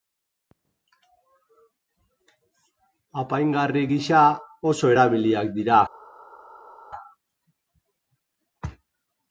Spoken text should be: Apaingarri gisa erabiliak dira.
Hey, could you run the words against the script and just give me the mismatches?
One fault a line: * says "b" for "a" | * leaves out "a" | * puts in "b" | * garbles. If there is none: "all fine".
* puts in "oso"